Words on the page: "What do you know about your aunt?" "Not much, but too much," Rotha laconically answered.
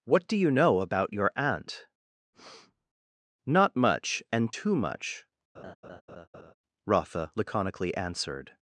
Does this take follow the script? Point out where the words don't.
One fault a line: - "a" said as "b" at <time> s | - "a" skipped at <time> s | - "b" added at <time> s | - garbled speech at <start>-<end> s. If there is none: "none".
- "but" said as "and" at 4.3 s